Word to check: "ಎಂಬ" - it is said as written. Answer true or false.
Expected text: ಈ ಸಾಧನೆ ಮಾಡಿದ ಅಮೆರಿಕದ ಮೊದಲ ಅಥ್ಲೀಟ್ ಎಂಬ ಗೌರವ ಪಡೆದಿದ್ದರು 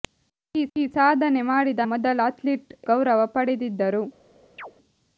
false